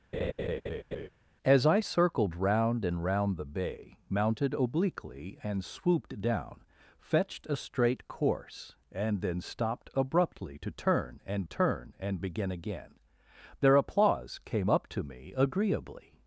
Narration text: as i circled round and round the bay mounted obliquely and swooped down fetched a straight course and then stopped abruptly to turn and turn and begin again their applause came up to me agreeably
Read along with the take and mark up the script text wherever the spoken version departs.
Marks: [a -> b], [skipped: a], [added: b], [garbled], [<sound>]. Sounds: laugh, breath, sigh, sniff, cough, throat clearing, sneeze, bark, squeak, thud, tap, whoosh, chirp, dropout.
[laugh] as i circled round and round the bay mounted obliquely and swooped down fetched a straight course and then stopped abruptly to turn and turn and begin again their applause came up to me agreeably